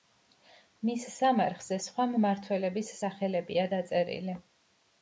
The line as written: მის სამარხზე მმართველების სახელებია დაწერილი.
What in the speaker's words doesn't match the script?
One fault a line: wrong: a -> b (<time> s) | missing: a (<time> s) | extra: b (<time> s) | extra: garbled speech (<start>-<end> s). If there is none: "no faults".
extra: სხვა (1.9 s)